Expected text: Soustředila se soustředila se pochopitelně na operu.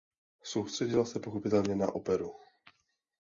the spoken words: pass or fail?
fail